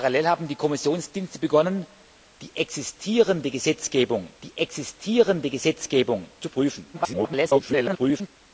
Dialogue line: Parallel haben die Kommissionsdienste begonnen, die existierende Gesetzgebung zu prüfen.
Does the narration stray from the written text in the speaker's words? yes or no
yes